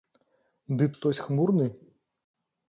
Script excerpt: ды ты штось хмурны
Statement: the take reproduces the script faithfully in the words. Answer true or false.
false